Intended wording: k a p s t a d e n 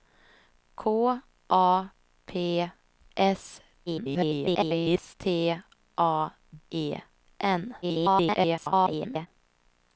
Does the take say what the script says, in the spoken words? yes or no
no